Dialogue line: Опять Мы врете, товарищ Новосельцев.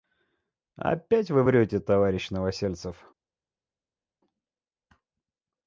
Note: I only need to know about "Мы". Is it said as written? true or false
false